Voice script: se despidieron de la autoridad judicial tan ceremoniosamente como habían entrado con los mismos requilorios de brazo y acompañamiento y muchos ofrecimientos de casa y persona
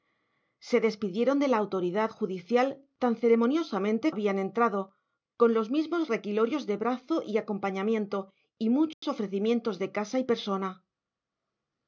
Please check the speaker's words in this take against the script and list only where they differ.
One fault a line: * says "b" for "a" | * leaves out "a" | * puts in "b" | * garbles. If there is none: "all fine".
* leaves out "como"